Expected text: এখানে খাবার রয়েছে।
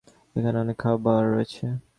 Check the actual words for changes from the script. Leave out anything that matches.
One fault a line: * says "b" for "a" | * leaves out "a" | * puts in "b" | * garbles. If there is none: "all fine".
* puts in "অনেক"